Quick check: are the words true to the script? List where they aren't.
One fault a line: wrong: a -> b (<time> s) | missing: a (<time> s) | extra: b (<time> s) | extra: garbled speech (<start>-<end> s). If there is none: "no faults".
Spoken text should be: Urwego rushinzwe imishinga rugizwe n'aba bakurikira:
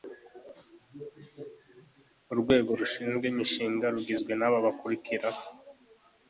no faults